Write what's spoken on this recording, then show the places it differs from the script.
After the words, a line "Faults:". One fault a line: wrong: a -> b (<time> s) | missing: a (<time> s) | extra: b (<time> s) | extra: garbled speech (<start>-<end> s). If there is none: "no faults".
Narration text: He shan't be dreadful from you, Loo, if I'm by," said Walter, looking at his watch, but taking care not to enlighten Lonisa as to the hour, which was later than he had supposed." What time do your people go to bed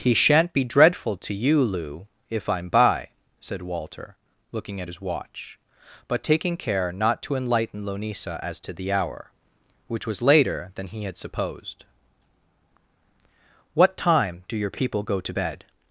He shan't be dreadful to you, Loo, if I'm by," said Walter, looking at his watch, but taking care not to enlighten Lonisa as to the hour, which was later than he had supposed." What time do your people go to bed
Faults:
wrong: from -> to (1.2 s)